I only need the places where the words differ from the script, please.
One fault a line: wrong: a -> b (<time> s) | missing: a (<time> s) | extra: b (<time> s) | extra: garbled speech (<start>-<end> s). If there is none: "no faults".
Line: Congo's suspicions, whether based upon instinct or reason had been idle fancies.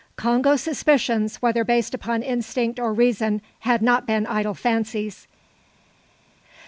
extra: not (3.8 s)